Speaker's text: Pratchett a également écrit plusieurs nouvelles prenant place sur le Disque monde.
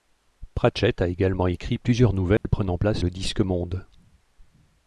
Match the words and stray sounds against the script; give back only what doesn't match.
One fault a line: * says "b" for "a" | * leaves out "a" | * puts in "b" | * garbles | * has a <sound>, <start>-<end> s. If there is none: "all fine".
* has a dropout, 2.4-2.4 s
* leaves out "sur"